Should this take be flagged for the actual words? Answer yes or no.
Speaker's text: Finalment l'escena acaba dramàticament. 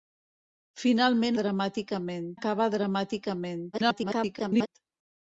yes